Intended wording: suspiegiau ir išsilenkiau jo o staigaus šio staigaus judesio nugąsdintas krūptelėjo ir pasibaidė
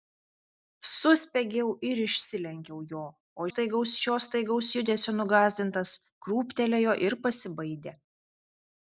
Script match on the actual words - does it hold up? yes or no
yes